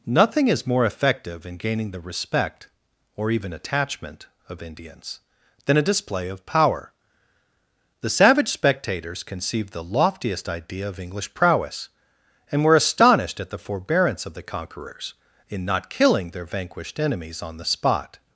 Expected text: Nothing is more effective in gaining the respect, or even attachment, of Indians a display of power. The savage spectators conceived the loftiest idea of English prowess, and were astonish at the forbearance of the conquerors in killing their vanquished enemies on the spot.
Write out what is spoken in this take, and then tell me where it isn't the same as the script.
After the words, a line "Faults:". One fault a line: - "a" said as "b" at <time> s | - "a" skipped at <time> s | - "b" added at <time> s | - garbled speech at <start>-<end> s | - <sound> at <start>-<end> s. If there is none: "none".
Nothing is more effective in gaining the respect, or even attachment, of Indians than a display of power. The savage spectators conceived the loftiest idea of English prowess, and were astonished at the forbearance of the conquerors in not killing their vanquished enemies on the spot.
Faults:
- "than" added at 5.7 s
- "astonish" said as "astonished" at 12.8 s
- "not" added at 15.6 s